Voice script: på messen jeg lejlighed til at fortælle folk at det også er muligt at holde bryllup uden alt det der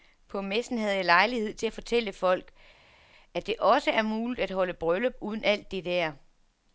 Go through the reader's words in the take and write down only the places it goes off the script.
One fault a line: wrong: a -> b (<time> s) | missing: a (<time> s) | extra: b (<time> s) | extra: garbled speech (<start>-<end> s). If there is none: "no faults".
extra: havde (0.8 s)